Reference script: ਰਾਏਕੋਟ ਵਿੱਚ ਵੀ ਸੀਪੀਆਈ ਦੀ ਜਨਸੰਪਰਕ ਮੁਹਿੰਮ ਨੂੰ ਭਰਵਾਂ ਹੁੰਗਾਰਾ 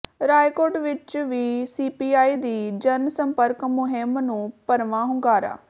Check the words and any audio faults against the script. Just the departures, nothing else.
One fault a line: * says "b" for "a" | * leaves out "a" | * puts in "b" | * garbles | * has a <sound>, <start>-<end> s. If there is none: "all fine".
all fine